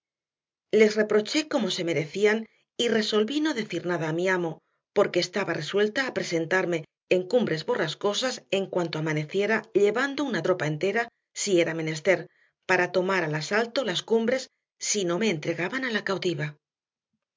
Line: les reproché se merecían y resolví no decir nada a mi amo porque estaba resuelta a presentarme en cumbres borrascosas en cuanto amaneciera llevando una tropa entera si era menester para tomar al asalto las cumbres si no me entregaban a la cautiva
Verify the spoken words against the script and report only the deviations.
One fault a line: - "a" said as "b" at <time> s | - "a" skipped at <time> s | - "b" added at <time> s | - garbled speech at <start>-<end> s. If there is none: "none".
- "como" added at 1.5 s